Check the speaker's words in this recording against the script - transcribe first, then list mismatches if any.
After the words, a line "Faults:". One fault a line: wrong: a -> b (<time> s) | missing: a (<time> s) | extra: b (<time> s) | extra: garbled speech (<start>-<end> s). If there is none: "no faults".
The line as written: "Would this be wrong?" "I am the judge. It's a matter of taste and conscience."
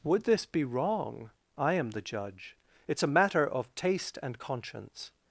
"Would this be wrong?" "I am the judge. It's a matter of taste and conscience."
Faults:
no faults